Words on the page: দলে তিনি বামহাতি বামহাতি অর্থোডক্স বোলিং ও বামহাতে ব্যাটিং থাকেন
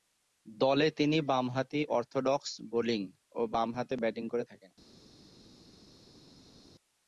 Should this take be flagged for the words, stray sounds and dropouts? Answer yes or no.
yes